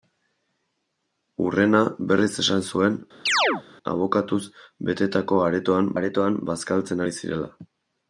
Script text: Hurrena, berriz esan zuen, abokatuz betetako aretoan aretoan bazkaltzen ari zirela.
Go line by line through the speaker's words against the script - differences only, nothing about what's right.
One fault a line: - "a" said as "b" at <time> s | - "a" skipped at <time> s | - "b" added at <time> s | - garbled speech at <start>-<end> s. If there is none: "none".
none